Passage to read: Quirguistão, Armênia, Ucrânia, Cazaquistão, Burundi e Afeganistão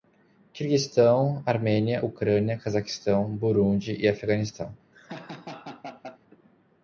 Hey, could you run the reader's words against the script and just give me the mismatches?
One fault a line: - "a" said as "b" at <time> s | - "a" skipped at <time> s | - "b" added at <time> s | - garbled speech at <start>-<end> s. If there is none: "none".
none